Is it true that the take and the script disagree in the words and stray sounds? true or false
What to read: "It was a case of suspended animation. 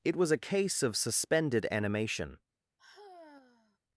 true